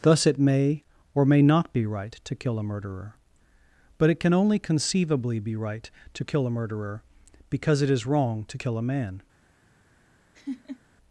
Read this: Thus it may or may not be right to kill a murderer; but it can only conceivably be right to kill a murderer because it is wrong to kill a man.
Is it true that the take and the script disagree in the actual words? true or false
false